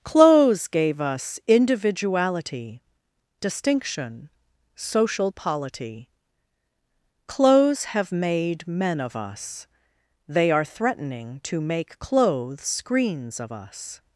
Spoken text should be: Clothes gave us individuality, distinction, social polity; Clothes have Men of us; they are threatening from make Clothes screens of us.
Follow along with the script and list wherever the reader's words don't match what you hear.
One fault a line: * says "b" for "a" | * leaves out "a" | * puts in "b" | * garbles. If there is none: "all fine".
* puts in "made"
* says "to" for "from"